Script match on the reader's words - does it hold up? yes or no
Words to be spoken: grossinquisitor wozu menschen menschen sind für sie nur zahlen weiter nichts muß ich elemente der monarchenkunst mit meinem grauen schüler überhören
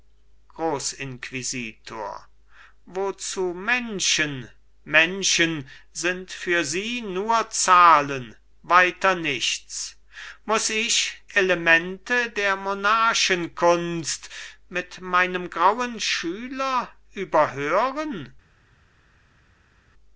yes